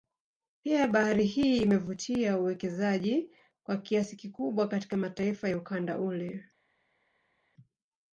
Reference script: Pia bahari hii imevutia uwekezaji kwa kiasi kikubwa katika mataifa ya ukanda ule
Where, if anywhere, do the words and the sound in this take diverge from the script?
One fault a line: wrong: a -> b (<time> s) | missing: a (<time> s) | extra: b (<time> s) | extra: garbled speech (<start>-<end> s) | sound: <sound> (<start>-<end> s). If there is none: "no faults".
no faults